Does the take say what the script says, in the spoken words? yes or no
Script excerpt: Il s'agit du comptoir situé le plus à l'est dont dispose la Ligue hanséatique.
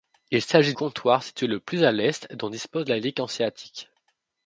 no